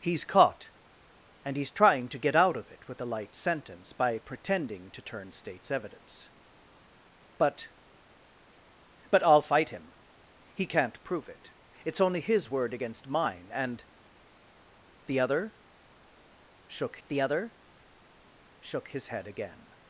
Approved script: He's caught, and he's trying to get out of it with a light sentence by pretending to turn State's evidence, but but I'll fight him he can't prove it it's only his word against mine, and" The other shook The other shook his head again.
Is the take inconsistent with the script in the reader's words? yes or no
no